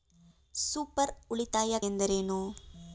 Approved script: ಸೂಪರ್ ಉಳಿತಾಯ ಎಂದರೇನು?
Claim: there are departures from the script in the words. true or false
false